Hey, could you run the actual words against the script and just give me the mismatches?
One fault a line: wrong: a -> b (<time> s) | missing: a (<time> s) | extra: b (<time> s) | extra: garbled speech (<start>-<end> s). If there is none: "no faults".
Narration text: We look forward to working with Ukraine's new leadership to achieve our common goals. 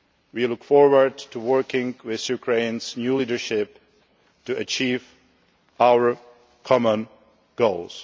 no faults